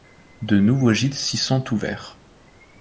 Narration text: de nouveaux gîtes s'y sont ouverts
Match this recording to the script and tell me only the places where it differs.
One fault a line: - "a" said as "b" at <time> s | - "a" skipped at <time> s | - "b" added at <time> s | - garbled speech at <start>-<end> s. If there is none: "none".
none